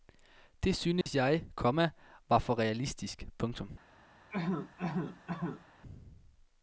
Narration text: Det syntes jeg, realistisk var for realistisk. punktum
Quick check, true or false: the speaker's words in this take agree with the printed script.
false